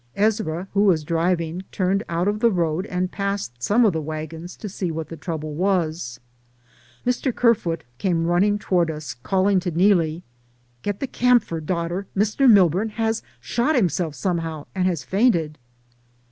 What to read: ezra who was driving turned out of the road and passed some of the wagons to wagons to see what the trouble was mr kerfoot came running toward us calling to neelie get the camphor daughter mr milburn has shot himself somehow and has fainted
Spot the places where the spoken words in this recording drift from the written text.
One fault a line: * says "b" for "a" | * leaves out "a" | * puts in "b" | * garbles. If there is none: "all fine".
* leaves out "wagons to"